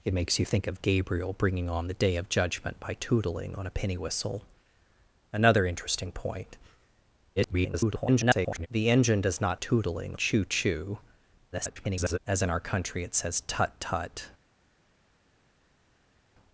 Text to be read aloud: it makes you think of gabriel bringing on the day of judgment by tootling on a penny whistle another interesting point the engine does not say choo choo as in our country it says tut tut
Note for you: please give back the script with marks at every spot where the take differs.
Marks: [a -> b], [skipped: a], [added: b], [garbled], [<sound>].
it makes you think of gabriel bringing on the day of judgment by tootling on a penny whistle another interesting point [garbled] the engine does not [say -> tootling] choo choo [garbled] as in our country it says tut tut